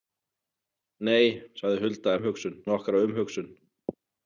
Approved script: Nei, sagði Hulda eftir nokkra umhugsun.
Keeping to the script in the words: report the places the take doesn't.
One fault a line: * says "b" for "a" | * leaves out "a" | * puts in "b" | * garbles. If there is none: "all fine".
* says "umhugsun" for "eftir"